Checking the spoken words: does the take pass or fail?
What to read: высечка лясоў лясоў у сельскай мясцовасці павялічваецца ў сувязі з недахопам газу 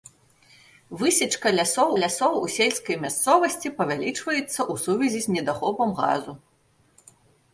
pass